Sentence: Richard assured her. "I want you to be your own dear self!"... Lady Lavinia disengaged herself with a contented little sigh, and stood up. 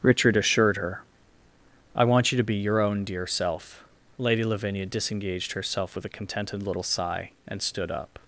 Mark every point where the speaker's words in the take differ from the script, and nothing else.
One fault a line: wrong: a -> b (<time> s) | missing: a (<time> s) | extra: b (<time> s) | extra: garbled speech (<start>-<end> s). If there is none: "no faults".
no faults